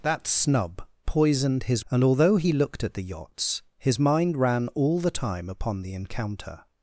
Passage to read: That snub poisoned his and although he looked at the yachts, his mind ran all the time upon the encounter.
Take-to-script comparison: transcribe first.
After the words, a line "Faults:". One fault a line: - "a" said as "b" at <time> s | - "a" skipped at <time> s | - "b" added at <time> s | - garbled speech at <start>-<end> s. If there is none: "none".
That snub poisoned his and although he looked at the yachts, his mind ran all the time upon the encounter.
Faults:
none